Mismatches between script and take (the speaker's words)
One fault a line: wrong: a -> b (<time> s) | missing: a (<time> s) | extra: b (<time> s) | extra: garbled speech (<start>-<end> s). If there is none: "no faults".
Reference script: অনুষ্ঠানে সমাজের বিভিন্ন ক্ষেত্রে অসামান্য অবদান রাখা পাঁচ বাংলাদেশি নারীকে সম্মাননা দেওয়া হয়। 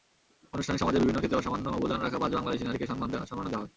no faults